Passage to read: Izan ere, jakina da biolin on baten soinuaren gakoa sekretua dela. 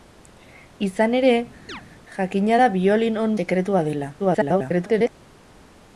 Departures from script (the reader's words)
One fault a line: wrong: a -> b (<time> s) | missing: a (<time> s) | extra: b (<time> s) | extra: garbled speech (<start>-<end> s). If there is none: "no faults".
missing: baten soinuaren gakoa (3.4 s)
extra: garbled speech (4.2-5.1 s)